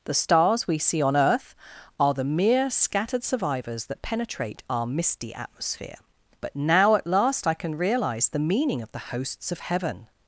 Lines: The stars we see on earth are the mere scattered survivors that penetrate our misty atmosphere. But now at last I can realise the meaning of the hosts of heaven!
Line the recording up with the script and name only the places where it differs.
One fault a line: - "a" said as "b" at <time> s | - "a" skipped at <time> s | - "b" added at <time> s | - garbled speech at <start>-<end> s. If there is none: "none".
none